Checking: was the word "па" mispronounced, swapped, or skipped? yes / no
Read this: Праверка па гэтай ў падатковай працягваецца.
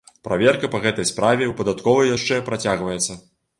no